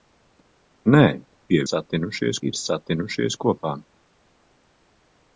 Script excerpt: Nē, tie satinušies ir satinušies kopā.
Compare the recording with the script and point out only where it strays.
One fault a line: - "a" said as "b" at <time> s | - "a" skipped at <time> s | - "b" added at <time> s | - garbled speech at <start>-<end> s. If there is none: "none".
none